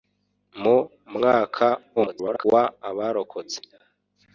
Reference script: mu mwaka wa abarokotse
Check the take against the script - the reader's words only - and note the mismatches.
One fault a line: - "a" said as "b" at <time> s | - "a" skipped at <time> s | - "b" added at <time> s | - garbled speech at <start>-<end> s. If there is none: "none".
- garbled speech at 2.0-2.4 s